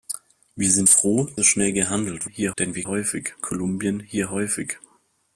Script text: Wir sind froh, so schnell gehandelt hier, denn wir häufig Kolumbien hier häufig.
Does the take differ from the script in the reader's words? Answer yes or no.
no